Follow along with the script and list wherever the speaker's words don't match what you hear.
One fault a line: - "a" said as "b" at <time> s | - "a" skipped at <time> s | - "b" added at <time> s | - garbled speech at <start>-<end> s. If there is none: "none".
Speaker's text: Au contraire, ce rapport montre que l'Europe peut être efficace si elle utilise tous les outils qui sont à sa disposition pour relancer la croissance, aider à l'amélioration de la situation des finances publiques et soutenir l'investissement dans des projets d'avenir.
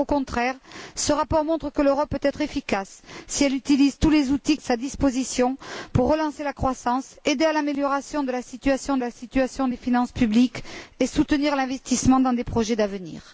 - "qui sont à" skipped at 4.6 s
- "la situation" added at 9.0 s